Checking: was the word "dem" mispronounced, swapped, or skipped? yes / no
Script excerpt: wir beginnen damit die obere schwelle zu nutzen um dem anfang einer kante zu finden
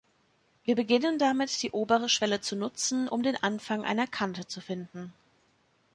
yes